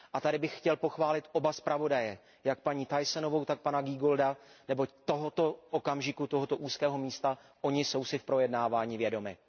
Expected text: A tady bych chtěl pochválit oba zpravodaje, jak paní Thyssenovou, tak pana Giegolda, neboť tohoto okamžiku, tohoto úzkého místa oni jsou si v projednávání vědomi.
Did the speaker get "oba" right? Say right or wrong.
right